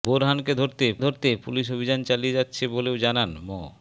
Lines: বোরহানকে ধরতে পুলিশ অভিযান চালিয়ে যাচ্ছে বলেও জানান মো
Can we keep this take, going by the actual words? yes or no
no